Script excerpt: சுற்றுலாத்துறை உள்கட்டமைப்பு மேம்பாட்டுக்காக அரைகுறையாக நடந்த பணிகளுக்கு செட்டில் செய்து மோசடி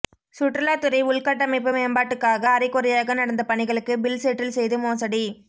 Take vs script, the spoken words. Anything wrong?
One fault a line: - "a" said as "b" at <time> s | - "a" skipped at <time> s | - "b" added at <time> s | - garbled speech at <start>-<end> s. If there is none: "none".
- "பில்" added at 4.0 s